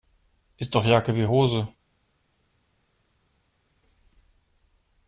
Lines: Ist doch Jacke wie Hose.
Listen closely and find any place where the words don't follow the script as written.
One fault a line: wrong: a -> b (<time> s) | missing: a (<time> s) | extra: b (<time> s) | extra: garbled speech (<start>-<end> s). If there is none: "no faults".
no faults